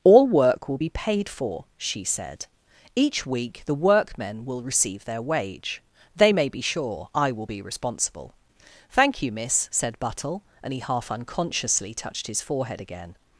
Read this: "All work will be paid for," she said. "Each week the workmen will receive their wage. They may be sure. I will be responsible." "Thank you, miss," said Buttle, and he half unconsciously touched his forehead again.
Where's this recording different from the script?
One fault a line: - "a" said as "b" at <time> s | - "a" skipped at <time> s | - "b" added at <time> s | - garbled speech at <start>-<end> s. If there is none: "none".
none